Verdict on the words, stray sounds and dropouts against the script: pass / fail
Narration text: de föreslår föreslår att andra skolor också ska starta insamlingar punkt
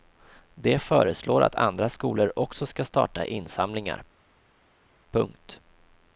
fail